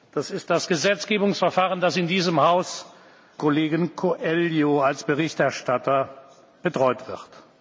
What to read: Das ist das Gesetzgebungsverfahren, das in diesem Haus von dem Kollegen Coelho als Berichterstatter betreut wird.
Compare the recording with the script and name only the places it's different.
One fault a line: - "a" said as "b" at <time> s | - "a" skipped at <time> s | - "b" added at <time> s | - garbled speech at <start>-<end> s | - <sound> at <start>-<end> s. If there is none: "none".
- "von dem" skipped at 2.9 s